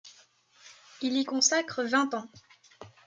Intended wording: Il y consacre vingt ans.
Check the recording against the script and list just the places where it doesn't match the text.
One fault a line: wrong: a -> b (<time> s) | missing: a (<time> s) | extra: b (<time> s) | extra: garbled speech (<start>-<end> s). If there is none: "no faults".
no faults